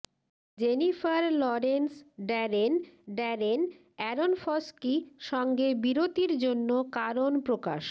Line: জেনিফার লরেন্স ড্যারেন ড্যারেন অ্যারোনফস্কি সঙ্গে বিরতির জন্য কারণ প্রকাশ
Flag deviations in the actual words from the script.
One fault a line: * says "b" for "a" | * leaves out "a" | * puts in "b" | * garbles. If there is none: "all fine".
all fine